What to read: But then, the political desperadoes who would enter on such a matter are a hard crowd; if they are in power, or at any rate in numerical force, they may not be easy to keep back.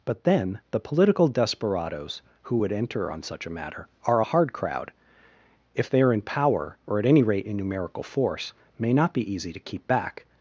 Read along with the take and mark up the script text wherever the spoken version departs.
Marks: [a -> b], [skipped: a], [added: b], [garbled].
But then, the political desperadoes who would enter on such a matter are a hard crowd; if they are in power, or at any rate in numerical force, [skipped: they] may not be easy to keep back.